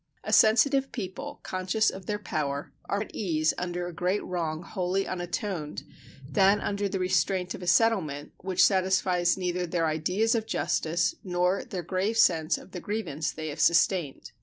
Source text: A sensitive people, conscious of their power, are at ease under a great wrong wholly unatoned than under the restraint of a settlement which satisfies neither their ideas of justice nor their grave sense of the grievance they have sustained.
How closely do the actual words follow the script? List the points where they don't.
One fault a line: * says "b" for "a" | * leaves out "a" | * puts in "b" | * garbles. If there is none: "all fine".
all fine